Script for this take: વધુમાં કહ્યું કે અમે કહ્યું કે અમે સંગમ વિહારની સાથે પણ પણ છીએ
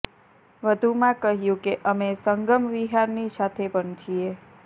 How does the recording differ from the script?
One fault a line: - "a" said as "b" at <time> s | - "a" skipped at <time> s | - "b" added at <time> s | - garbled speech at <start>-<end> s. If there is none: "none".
- "કહ્યું કે અમે" skipped at 2.1 s
- "પણ" skipped at 3.9 s